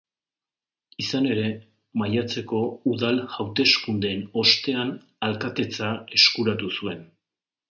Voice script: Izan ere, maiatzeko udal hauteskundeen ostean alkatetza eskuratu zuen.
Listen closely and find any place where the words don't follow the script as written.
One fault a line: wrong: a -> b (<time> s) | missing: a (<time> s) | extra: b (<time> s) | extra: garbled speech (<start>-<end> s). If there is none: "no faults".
no faults